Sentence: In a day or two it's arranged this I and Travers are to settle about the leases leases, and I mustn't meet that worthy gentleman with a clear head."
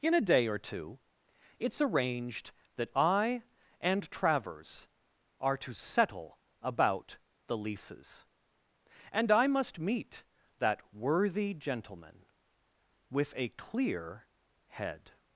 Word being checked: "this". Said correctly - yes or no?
no